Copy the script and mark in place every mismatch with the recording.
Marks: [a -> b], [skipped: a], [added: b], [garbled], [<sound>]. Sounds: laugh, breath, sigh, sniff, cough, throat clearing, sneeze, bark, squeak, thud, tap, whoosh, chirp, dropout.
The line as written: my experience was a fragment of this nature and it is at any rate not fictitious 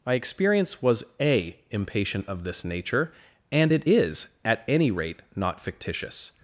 my experience was a [fragment -> impatient] of this nature and it is at any rate not fictitious